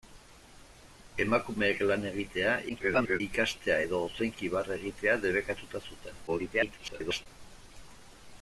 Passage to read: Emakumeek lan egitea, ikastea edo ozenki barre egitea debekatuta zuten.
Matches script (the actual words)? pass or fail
fail